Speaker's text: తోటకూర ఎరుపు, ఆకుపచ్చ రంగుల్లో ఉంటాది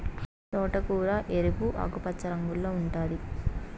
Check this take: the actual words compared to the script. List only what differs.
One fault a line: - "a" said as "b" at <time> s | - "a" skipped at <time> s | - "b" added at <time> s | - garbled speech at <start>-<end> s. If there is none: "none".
none